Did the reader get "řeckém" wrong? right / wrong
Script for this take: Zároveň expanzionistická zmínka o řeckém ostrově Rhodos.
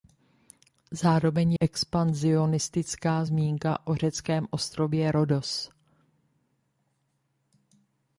right